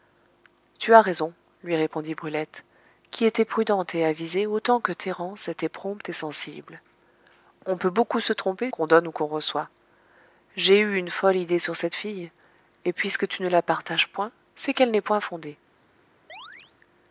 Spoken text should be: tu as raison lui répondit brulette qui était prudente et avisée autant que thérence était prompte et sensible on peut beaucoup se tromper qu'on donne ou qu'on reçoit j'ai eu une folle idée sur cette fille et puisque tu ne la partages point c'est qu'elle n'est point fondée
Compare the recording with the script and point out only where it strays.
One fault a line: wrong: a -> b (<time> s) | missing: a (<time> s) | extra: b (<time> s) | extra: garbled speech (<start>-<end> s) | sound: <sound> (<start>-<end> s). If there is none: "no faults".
sound: chirp (16.3-16.7 s)